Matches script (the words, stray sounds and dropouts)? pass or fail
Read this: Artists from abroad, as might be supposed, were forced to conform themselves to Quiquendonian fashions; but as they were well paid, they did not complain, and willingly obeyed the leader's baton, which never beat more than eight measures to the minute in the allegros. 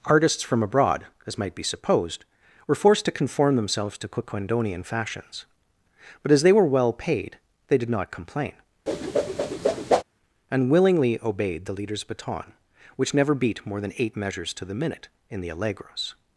fail